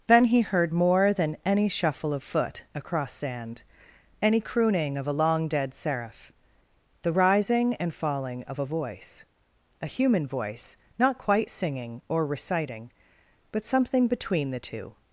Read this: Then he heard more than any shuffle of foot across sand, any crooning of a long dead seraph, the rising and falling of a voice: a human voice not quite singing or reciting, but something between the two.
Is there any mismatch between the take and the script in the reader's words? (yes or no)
no